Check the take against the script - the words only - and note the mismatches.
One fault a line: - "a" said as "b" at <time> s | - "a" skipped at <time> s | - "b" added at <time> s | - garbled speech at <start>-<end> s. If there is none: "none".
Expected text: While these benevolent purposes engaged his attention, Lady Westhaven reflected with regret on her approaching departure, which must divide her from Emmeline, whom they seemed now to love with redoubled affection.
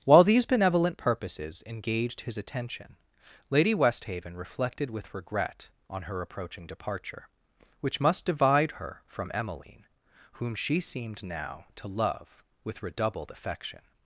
- "they" said as "she" at 10.6 s